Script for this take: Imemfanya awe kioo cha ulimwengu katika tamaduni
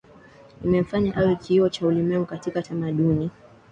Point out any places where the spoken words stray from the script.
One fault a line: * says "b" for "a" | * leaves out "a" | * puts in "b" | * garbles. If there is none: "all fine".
all fine